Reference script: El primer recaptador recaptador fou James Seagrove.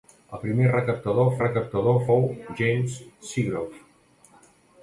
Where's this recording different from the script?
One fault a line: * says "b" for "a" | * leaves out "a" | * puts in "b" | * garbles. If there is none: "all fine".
all fine